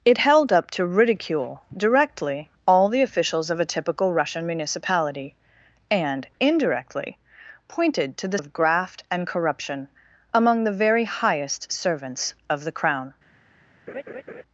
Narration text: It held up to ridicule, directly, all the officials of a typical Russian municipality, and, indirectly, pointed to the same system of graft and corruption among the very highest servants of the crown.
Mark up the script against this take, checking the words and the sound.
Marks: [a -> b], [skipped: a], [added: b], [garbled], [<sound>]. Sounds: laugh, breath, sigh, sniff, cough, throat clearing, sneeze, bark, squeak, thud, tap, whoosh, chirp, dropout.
It held up to ridicule, directly, all the officials of a typical Russian municipality, and, indirectly, pointed to the [skipped: same system] of graft and corruption among the very highest servants of the crown. [laugh]